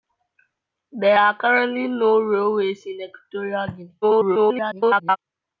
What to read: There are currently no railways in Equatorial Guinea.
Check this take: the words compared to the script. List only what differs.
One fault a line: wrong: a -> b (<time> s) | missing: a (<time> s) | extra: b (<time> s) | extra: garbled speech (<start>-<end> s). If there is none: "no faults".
extra: garbled speech (4.0-5.2 s)